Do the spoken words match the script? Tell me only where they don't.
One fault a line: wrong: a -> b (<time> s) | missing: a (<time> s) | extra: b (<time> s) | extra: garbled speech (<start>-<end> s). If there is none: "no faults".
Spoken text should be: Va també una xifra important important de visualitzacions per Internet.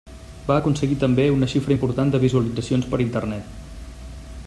extra: aconseguir (0.6 s)
missing: important (2.1 s)